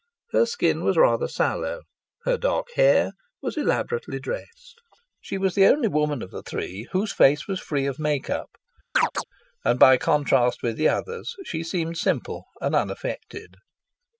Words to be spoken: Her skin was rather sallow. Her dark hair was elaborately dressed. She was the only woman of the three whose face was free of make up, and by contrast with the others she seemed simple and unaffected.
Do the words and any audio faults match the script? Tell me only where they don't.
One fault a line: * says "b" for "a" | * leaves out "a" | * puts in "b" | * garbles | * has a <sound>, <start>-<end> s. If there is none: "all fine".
* has a chirp, 8.9-9.2 s